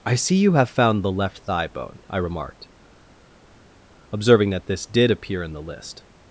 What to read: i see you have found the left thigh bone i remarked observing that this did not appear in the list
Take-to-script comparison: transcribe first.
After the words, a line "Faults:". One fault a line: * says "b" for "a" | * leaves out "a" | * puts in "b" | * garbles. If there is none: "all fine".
i see you have found the left thigh bone i remarked observing that this did appear in the list
Faults:
* leaves out "not"